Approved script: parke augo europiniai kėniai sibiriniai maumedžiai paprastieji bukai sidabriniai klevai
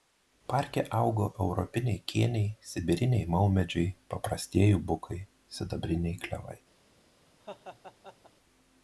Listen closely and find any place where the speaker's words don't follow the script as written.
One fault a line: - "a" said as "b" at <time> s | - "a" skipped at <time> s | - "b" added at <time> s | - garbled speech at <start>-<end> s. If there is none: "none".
none